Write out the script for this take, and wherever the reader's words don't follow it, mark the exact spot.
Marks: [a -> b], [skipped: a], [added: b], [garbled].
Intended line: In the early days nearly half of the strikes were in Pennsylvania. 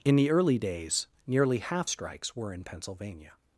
In the early days nearly half [skipped: of the] strikes were in Pennsylvania.